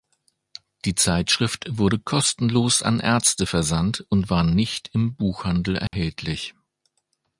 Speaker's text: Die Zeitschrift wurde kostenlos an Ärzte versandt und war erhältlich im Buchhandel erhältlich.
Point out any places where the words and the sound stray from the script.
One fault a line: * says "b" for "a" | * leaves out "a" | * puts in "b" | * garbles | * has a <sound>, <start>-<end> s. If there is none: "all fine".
* says "nicht" for "erhältlich"
* has a dropout, 5.9-5.9 s